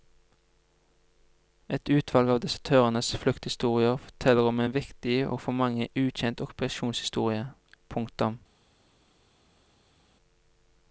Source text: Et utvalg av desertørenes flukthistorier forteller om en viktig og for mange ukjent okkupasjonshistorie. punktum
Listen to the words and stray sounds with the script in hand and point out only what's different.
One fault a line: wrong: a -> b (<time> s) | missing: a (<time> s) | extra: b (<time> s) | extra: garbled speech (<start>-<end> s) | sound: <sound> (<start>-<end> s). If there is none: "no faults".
no faults